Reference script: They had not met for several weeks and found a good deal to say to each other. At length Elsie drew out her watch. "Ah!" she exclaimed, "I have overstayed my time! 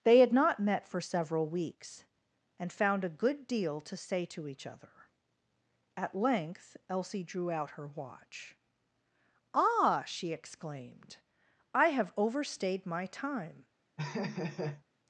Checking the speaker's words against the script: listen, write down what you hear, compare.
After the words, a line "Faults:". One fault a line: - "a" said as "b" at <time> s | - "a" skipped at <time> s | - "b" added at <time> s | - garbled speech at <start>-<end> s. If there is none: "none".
They had not met for several weeks and found a good deal to say to each other. At length Elsie drew out her watch. "Ah!" she exclaimed, "I have overstayed my time!
Faults:
none